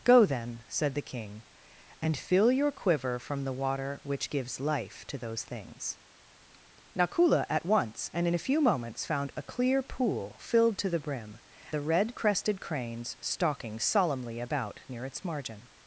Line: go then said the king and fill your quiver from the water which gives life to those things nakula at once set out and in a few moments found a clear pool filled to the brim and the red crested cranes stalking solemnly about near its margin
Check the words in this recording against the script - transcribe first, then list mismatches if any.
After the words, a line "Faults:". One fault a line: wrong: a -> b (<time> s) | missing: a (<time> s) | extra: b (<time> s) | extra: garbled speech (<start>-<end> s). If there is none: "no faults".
go then said the king and fill your quiver from the water which gives life to those things nakula at once and in a few moments found a clear pool filled to the brim the red crested cranes stalking solemnly about near its margin
Faults:
missing: set out (8.1 s)
missing: and (11.4 s)